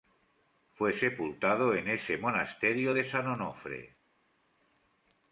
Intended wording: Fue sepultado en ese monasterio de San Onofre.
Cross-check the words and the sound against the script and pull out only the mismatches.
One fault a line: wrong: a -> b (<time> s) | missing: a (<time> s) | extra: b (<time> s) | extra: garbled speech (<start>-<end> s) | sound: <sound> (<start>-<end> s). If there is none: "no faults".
no faults